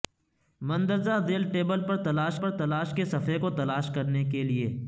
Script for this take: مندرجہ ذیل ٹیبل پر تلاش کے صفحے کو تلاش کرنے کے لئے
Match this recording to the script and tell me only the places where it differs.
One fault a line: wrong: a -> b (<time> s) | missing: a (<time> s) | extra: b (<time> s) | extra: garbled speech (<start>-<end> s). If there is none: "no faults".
extra: پر تلاش (2.4 s)